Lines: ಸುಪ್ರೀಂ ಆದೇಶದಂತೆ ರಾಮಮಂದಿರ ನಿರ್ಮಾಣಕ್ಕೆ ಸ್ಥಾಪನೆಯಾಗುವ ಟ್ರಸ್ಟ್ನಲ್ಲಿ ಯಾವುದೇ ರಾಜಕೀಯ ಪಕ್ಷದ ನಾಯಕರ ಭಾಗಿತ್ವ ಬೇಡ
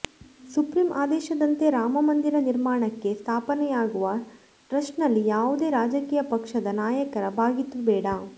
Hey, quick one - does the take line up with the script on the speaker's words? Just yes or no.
yes